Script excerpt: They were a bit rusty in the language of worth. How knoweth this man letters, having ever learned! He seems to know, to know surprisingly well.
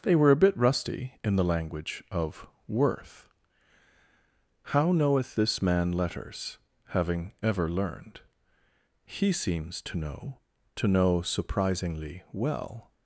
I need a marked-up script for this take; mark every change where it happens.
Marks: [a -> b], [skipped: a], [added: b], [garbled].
They were a bit rusty in the language of worth. How knoweth this man letters, having ever learned! He seems to know, to know surprisingly well.